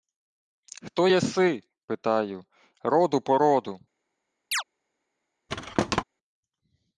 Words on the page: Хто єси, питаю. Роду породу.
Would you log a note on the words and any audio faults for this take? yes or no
yes